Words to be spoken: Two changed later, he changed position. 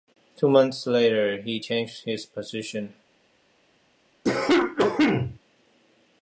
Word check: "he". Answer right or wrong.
right